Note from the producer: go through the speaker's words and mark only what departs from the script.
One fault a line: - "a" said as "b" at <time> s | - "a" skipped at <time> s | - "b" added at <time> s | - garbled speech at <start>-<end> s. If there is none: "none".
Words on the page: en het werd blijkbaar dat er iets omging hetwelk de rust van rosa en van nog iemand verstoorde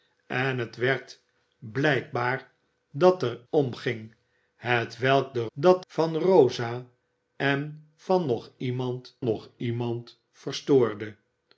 - "iets" skipped at 3.4 s
- "rust" said as "dat" at 5.5 s
- "nog iemand" added at 9.2 s